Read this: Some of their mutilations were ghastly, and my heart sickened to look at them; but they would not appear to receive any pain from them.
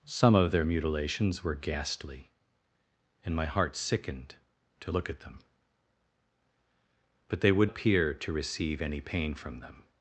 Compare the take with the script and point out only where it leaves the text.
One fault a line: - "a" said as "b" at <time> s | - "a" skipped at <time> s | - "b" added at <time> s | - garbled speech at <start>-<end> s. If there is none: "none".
- "not" skipped at 7.7 s